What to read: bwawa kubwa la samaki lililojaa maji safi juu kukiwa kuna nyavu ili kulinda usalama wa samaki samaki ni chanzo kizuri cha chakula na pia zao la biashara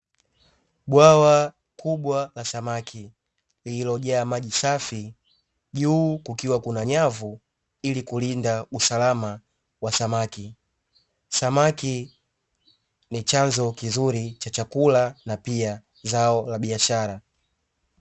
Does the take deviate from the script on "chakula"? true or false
false